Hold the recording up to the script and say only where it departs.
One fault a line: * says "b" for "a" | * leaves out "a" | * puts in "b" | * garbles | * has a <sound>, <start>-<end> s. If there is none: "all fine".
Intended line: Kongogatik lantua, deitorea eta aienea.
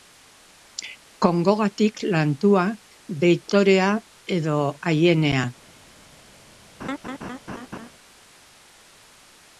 * says "edo" for "eta"
* has a laugh, 6.8-7.9 s